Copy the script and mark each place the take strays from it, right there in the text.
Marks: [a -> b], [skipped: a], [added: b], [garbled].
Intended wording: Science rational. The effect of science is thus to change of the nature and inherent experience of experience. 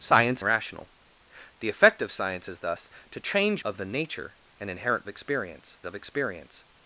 Science rational. The effect of science is thus to change of the nature and inherent experience of experience.